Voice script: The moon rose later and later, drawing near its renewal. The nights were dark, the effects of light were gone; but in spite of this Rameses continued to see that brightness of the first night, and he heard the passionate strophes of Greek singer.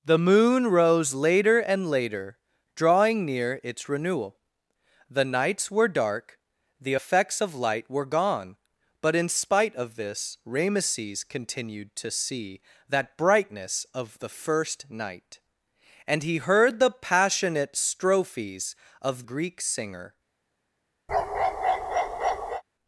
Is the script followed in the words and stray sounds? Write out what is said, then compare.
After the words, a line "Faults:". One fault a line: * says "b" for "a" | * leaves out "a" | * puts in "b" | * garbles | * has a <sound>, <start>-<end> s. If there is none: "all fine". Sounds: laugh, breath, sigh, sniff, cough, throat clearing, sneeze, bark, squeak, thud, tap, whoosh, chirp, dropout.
The moon rose later and later, drawing near its renewal. The nights were dark, the effects of light were gone; but in spite of this Rameses continued to see that brightness of the first night, and he heard the passionate strophes of Greek singer.
Faults:
* has a bark, 21.1-22.6 s